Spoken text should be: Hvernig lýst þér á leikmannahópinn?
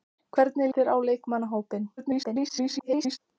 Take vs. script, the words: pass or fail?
fail